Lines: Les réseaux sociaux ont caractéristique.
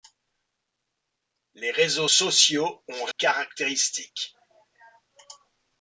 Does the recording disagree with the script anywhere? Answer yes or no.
no